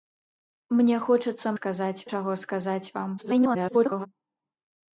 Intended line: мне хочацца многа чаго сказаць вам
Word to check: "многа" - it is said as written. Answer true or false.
false